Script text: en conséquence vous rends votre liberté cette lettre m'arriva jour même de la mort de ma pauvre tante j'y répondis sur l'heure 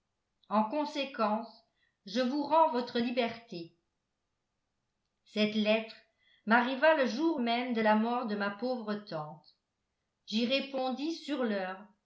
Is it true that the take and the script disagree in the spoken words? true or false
true